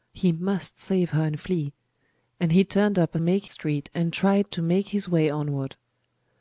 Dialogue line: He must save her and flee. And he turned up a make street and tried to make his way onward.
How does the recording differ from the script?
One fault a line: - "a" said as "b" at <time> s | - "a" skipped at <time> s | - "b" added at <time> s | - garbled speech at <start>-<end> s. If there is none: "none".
none